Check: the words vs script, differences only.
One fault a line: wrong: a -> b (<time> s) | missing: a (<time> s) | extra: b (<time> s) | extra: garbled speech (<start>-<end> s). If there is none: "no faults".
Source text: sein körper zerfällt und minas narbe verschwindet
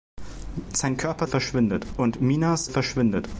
wrong: zerfällt -> verschwindet (1.3 s)
missing: narbe (2.7 s)